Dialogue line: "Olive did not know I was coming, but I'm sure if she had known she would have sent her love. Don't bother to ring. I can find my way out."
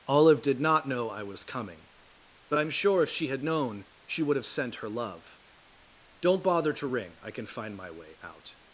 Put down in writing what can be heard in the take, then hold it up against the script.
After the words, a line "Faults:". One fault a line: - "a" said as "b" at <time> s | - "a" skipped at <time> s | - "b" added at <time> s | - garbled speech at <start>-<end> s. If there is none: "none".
"Olive did not know I was coming, but I'm sure if she had known she would have sent her love. Don't bother to ring. I can find my way out."
Faults:
none